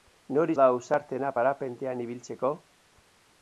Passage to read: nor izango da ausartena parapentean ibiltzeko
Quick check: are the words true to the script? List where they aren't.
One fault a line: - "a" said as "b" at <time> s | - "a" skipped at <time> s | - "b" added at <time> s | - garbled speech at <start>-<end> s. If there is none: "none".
- "izango" skipped at 0.5 s